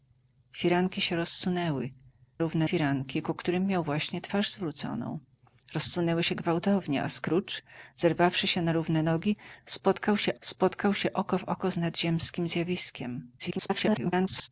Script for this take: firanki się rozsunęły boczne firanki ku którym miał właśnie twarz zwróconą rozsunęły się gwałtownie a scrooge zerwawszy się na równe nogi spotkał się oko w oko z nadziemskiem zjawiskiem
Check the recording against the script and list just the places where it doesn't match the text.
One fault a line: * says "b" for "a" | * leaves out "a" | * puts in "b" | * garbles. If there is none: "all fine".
* says "równe" for "boczne"
* puts in "spotkał się"
* garbles